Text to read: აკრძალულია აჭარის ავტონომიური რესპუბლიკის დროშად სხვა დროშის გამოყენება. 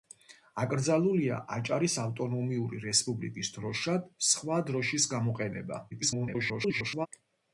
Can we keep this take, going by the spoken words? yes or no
no